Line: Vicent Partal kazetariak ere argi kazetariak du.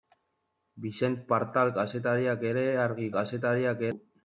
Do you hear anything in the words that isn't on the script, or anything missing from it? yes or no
no